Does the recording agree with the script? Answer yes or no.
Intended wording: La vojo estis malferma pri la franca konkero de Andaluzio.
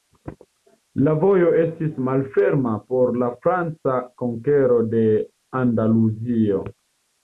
no